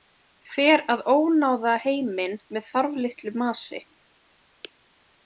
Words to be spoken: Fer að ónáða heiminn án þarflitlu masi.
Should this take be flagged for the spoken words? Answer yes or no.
yes